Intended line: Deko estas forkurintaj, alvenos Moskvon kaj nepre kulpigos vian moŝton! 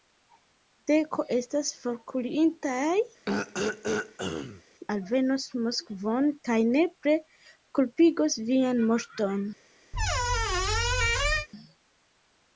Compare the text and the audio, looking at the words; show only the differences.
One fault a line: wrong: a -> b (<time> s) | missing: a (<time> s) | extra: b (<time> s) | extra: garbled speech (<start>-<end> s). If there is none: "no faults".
no faults